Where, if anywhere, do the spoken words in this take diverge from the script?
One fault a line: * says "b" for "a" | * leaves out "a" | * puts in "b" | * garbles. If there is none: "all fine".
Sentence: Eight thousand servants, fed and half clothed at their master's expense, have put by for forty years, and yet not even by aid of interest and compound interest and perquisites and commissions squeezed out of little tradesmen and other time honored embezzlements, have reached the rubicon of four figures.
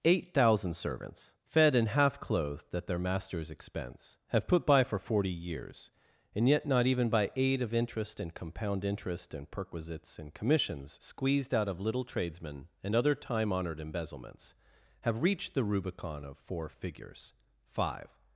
* puts in "Five"